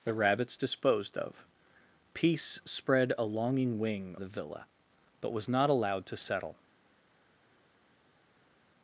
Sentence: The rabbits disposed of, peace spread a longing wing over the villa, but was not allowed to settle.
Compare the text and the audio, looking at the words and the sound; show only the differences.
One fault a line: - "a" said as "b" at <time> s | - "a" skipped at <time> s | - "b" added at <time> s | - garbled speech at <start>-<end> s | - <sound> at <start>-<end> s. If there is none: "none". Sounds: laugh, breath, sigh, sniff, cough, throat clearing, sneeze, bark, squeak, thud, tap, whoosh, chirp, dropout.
- "over" skipped at 4.2 s